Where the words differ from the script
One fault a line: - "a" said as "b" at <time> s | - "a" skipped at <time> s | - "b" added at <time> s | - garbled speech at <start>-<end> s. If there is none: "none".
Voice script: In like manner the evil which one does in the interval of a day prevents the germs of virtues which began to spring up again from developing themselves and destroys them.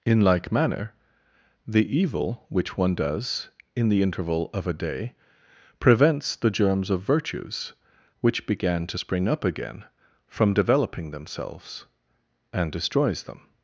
none